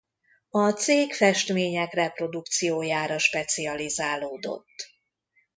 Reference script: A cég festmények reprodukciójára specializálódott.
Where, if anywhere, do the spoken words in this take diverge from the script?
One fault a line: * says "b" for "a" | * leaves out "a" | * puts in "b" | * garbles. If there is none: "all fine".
all fine